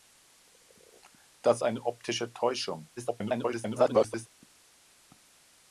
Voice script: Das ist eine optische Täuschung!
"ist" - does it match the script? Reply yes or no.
no